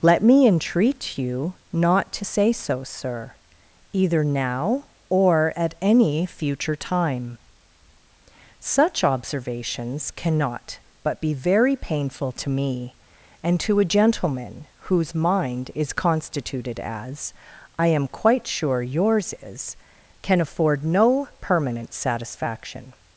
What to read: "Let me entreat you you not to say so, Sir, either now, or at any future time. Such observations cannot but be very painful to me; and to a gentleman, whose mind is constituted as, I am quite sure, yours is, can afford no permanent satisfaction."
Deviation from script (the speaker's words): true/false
true